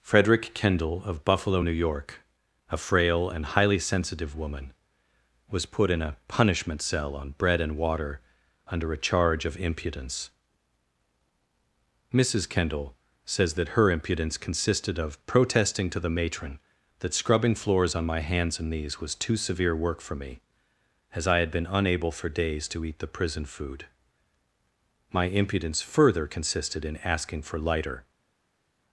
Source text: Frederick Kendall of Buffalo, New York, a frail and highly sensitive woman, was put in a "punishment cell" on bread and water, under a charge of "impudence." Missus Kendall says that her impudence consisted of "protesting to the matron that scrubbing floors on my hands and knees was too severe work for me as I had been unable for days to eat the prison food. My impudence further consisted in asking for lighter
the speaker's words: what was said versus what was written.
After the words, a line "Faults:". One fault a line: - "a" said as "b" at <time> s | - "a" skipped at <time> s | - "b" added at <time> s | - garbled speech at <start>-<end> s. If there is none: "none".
Frederick Kendall of Buffalo, New York, a frail and highly sensitive woman, was put in a "punishment cell" on bread and water, under a charge of "impudence." Missus Kendall says that her impudence consisted of "protesting to the matron that scrubbing floors on my hands and knees was too severe work for me as I had been unable for days to eat the prison food. My impudence further consisted in asking for lighter
Faults:
none